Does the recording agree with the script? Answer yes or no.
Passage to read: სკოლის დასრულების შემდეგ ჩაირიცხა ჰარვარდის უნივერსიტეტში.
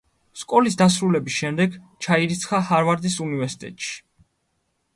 yes